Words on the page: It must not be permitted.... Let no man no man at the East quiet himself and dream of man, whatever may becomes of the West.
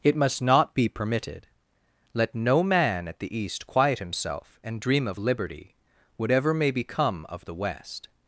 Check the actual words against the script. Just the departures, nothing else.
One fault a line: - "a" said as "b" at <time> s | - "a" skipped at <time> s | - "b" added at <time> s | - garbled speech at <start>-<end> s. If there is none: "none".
- "no man" skipped at 3.1 s
- "man" said as "liberty" at 5.2 s
- "becomes" said as "become" at 6.7 s